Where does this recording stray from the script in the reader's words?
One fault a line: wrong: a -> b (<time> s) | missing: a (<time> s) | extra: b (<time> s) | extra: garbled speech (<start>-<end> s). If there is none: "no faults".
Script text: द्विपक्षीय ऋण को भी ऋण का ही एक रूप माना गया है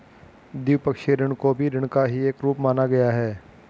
no faults